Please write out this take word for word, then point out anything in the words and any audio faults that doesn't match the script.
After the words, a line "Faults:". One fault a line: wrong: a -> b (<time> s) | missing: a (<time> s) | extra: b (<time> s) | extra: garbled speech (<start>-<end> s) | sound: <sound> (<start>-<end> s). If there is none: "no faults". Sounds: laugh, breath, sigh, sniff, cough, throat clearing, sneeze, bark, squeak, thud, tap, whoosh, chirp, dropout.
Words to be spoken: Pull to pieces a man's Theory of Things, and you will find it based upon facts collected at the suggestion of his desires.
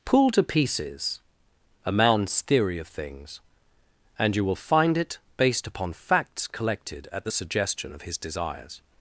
Pull to pieces a man's Theory of Things, and you will find it based upon facts collected at the suggestion of his desires.
Faults:
no faults